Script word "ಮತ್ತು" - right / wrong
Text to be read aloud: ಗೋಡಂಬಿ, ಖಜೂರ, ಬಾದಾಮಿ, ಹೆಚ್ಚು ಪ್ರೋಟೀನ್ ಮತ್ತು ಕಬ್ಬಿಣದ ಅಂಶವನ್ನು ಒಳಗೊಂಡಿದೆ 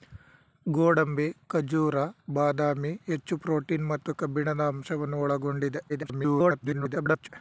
right